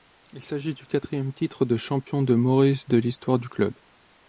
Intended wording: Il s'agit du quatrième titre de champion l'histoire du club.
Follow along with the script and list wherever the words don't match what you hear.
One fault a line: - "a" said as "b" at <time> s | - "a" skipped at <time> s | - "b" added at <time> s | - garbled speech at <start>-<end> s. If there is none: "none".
- "de Maurice de" added at 2.2 s